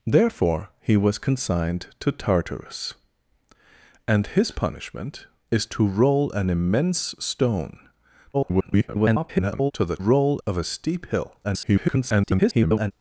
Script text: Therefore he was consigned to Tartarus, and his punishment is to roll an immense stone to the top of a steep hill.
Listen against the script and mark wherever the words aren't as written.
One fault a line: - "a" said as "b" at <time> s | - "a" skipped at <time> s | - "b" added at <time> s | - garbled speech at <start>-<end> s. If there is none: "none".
- garbled speech at 8.3-9.7 s
- "top" said as "roll" at 10.0 s
- garbled speech at 11.4-12.9 s